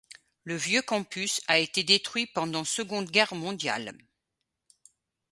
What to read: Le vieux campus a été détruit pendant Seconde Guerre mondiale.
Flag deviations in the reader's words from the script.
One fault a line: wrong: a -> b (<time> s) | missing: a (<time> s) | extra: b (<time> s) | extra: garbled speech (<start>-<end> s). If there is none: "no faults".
no faults